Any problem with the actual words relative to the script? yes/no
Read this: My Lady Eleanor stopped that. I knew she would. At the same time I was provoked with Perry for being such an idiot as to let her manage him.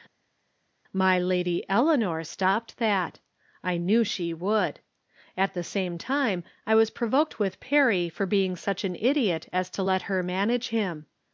no